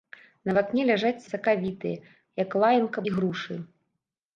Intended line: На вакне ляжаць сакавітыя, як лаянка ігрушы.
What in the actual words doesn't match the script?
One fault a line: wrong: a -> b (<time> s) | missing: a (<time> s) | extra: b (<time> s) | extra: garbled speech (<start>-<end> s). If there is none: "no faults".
no faults